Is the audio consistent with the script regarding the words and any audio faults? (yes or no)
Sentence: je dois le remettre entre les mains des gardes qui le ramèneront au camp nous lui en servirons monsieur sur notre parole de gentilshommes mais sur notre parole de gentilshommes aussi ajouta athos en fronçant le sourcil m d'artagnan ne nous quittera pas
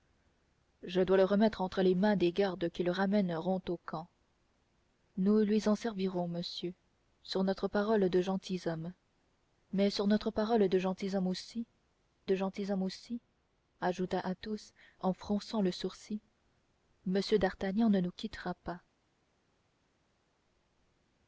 no